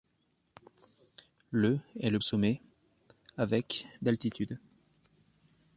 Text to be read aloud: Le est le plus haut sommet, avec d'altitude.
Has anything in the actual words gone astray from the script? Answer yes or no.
yes